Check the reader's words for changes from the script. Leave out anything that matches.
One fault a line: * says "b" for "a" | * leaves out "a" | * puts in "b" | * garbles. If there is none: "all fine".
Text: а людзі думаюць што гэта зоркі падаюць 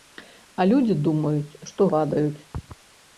* leaves out "гэта зоркі"